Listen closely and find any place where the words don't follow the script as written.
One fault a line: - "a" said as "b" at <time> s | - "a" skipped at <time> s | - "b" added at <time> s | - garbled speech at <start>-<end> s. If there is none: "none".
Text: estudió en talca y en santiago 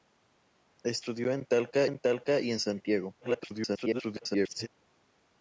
- "en talca" added at 1.8 s
- garbled speech at 3.2-4.7 s